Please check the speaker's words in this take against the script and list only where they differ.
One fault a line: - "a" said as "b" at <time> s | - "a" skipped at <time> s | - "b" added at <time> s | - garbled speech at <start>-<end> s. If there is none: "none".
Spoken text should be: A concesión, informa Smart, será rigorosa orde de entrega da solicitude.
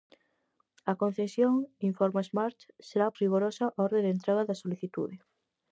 none